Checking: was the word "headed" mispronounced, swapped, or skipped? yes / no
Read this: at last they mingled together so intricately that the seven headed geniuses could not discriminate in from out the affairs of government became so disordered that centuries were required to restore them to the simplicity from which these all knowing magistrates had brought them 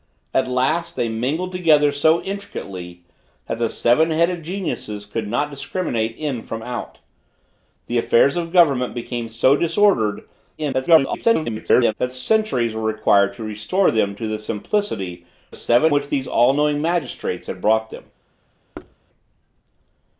no